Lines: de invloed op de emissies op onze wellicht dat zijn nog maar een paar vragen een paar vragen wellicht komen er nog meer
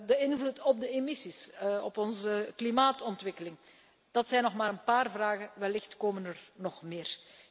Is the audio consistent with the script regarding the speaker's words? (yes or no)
no